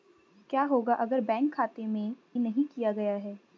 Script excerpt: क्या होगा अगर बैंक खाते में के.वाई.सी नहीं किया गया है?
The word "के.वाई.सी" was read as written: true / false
false